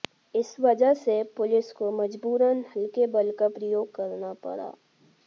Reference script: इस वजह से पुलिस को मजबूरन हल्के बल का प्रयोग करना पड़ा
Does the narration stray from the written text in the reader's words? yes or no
no